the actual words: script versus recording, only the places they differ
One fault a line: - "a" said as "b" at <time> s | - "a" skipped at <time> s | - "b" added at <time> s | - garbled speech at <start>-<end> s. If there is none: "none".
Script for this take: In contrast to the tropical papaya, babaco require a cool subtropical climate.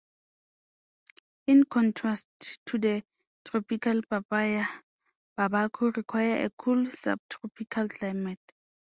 none